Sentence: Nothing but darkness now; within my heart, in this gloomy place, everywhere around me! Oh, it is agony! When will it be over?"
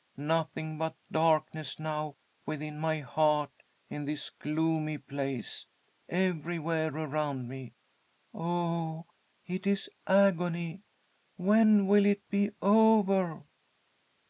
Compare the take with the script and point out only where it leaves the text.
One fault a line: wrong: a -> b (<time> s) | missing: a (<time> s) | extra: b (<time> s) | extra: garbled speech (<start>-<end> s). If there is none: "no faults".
no faults